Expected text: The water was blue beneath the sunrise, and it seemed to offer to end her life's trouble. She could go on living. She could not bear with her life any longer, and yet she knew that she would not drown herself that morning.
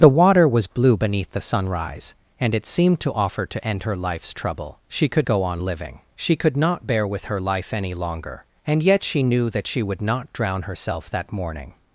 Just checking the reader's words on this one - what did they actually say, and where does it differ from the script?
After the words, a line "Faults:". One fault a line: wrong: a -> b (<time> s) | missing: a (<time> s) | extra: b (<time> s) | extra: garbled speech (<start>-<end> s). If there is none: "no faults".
The water was blue beneath the sunrise, and it seemed to offer to end her life's trouble. She could go on living. She could not bear with her life any longer, and yet she knew that she would not drown herself that morning.
Faults:
no faults